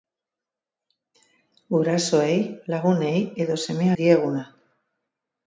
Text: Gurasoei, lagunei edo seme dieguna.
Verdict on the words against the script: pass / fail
pass